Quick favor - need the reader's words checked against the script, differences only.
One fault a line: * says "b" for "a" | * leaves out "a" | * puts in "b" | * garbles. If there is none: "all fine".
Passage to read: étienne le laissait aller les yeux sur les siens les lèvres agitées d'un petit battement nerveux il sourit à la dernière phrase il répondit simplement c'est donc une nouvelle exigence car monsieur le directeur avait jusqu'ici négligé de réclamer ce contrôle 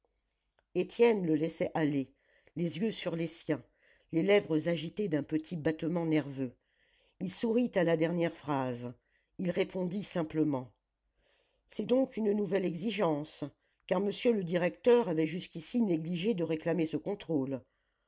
all fine